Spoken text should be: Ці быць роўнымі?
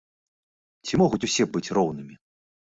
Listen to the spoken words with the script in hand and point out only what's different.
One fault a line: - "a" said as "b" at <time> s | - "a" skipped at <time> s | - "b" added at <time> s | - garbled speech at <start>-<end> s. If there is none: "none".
- "могуць усе" added at 1.0 s